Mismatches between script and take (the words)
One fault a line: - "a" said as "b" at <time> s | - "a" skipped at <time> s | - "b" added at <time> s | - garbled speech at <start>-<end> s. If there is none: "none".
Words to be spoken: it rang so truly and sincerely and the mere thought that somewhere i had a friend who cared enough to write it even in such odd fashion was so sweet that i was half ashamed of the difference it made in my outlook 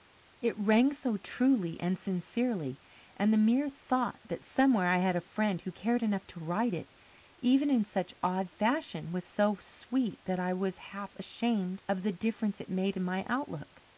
none